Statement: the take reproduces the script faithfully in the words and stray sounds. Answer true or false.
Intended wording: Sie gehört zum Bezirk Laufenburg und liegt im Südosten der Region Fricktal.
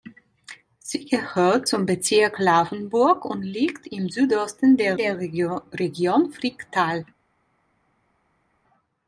false